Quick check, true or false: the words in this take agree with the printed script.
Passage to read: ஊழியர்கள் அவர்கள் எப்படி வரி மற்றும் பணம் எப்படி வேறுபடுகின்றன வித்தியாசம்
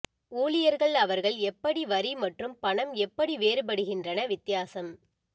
true